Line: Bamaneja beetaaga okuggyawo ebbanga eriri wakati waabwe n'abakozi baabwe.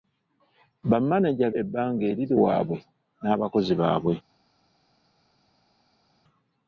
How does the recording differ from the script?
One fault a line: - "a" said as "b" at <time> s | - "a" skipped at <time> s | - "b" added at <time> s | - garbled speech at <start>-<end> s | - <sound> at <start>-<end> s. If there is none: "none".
- "beetaaga okuggyawo" skipped at 1.5 s
- "wakati" skipped at 2.3 s